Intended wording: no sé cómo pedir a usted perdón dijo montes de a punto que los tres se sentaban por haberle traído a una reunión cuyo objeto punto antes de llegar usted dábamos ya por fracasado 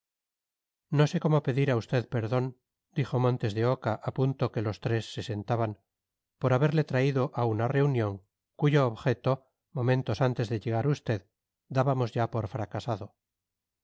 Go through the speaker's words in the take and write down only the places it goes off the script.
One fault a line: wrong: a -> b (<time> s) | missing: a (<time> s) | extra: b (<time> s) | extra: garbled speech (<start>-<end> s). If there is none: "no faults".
extra: oca (3.7 s)
wrong: punto -> momentos (9.7 s)